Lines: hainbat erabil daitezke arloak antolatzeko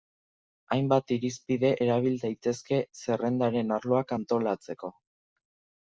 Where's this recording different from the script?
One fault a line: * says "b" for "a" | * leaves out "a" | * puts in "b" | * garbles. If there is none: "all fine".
* puts in "irizpide"
* puts in "zerrendaren"